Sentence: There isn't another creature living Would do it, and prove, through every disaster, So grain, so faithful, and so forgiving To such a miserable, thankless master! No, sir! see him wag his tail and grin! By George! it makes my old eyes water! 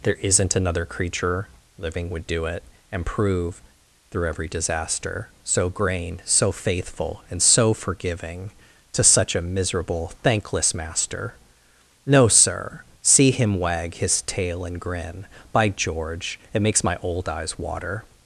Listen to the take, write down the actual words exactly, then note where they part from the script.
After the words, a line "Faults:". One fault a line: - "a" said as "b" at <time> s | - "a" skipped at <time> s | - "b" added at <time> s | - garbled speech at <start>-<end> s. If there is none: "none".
There isn't another creature living Would do it, and prove, through every disaster, So grain, so faithful, and so forgiving To such a miserable, thankless master! No, sir! see him wag his tail and grin! By George! it makes my old eyes water!
Faults:
none